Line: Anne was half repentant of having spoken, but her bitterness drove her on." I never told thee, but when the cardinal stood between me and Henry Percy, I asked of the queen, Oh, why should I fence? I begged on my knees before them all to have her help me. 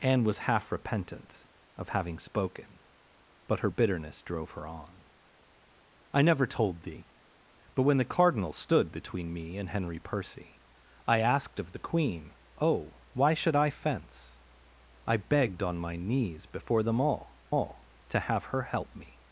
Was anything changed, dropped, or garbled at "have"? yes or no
no